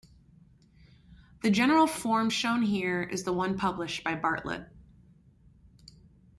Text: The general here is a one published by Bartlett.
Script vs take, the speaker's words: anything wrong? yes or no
yes